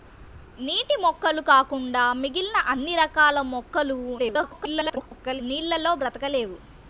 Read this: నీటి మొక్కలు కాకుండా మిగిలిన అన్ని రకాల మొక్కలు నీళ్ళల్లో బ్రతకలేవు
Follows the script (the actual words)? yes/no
no